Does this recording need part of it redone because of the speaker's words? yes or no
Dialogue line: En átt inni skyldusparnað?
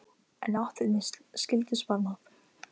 no